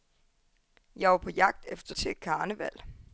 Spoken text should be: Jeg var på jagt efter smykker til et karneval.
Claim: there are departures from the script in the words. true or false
true